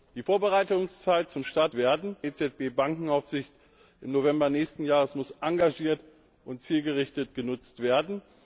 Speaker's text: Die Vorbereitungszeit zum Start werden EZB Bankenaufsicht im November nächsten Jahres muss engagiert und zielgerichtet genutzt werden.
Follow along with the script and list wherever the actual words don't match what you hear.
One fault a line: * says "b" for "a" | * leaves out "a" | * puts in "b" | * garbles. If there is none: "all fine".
all fine